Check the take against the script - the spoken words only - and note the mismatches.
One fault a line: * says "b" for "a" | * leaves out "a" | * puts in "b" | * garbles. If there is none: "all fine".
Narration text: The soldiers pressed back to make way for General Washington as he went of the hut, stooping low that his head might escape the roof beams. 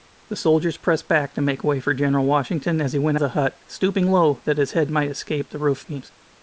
all fine